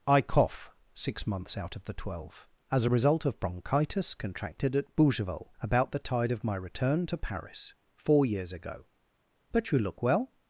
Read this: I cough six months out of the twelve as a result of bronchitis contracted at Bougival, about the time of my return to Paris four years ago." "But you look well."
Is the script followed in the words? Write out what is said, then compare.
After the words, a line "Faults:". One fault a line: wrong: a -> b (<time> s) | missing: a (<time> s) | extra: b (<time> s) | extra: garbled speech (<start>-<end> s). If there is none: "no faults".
I cough six months out of the twelve as a result of bronchitis contracted at Bougival, about the tide of my return to Paris four years ago." "But you look well."
Faults:
wrong: time -> tide (6.0 s)